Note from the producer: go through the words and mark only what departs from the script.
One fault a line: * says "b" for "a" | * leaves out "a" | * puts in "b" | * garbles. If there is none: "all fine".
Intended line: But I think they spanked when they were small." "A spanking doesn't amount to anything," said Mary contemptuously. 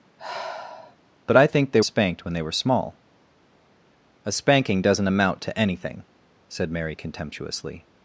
all fine